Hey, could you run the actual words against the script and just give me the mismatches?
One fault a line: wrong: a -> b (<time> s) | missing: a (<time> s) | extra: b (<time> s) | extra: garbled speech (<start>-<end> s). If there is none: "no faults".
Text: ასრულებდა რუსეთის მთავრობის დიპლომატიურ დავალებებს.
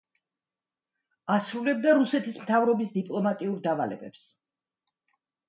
no faults